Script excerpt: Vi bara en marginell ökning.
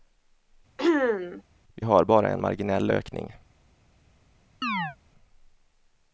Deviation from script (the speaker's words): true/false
true